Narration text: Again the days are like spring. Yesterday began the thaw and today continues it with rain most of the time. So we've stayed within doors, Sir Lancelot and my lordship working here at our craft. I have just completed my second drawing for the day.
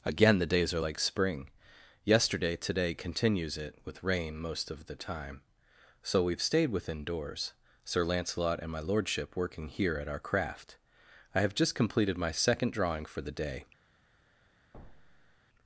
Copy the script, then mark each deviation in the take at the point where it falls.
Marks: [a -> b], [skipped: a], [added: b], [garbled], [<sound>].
Again the days are like spring. Yesterday [skipped: began the thaw and] today continues it with rain most of the time. So we've stayed within doors, Sir Lancelot and my lordship working here at our craft. I have just completed my second drawing for the day. [thud]